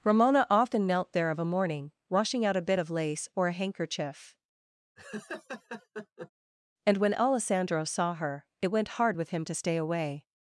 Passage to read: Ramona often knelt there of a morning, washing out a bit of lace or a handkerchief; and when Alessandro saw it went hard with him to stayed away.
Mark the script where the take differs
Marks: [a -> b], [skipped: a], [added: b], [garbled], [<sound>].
Ramona often knelt there of a morning, washing out a bit of lace or a handkerchief; [laugh] and when Alessandro saw [added: her] it went hard with him to [stayed -> stay] away.